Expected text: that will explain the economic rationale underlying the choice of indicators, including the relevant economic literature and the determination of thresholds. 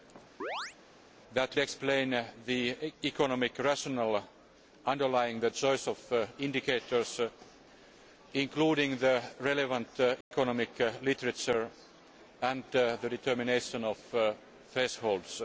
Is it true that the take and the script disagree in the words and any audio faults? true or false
true